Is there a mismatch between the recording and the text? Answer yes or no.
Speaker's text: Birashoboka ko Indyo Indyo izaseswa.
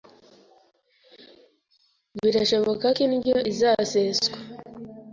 yes